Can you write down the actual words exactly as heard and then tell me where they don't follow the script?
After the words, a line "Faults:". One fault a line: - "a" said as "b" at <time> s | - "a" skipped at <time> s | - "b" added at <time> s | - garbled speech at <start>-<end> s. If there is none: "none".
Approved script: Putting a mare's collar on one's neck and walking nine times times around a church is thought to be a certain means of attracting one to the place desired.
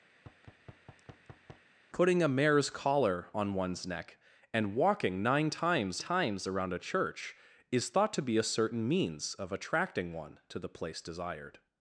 Putting a mare's collar on one's neck and walking nine times times around a church is thought to be a certain means of attracting one to the place desired.
Faults:
none